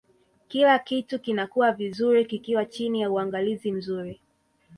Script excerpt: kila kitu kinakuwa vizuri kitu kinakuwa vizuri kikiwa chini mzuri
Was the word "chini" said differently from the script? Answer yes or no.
yes